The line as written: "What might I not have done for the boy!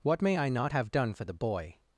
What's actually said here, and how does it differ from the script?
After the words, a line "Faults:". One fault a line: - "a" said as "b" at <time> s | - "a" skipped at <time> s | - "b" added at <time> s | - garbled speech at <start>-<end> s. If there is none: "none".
"What may I not have done for the boy!
Faults:
- "might" said as "may" at 0.2 s